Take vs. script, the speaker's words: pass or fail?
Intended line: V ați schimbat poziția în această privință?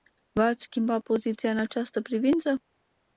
pass